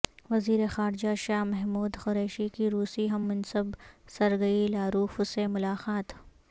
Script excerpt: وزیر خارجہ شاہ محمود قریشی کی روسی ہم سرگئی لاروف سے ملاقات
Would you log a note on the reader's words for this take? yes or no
yes